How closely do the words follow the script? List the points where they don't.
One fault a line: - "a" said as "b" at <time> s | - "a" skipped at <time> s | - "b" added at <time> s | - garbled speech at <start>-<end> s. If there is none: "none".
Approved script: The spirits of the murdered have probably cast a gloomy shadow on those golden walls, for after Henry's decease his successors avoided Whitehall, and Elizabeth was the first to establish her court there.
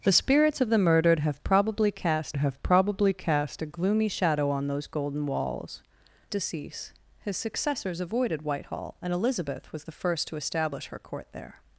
- "have probably cast" added at 2.4 s
- "for after Henry's" skipped at 5.8 s